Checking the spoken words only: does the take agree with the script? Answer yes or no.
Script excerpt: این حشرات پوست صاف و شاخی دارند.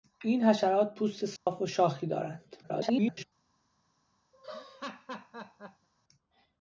no